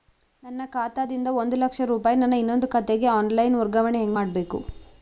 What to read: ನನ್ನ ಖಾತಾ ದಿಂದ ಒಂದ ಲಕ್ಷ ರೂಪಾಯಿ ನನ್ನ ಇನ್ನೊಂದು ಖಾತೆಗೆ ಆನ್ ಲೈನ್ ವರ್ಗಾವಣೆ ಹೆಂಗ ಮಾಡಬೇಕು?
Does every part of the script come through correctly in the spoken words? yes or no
yes